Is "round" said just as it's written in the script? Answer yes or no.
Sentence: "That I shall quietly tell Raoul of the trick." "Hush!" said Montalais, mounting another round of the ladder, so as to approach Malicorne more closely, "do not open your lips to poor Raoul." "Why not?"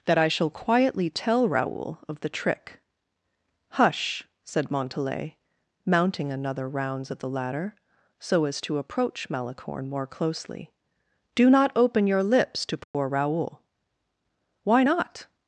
no